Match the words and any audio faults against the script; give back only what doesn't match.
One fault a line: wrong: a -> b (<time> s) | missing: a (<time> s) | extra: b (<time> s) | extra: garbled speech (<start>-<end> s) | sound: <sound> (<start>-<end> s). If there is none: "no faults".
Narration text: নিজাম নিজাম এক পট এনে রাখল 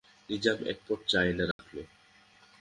missing: নিজাম (0.6 s)
extra: চা (1.1 s)
sound: dropout (1.5-1.6 s)